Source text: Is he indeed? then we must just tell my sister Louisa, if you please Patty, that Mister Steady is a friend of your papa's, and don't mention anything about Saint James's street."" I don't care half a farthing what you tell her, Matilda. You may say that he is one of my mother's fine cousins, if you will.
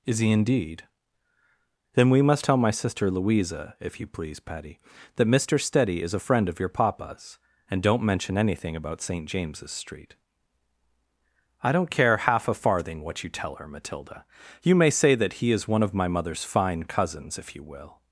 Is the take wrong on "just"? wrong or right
wrong